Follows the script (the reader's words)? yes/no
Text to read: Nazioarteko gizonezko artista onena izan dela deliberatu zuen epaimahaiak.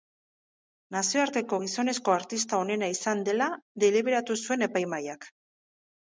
yes